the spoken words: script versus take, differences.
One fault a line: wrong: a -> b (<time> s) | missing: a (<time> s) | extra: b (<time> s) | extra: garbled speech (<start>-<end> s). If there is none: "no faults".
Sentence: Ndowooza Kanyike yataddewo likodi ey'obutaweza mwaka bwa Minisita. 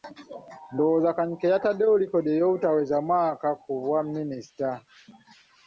extra: ku (3.6 s)